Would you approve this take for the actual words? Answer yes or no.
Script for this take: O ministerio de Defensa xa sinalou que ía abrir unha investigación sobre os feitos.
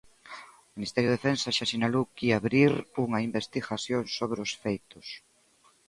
yes